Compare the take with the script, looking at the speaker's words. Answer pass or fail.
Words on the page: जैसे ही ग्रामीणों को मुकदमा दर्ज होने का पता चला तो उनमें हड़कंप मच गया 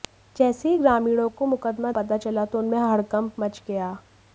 fail